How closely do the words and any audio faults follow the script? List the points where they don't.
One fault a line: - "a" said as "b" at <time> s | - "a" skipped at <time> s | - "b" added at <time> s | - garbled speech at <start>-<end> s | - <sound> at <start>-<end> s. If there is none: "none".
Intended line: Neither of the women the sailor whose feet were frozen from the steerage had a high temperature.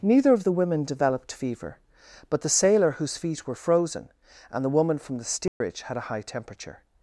- "developed fever But" added at 0.8 s
- "and the woman" added at 4.5 s
- dropout at 5.5-5.6 s